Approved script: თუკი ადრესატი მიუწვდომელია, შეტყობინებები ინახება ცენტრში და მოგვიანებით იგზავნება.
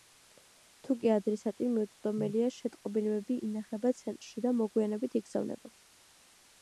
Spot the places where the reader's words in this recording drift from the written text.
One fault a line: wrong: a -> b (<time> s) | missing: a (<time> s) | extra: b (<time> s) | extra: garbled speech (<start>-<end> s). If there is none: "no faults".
no faults